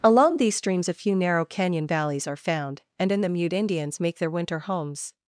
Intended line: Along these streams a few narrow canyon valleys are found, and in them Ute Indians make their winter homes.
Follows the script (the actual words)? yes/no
yes